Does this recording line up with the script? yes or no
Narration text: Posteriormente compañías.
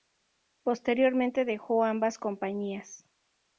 no